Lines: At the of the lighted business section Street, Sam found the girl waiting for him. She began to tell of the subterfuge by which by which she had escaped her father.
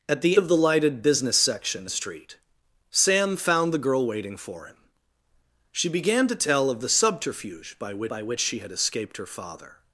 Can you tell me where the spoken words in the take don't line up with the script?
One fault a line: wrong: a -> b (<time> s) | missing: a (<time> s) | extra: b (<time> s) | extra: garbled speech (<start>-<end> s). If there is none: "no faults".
no faults